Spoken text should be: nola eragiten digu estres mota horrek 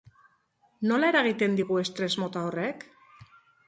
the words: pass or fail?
pass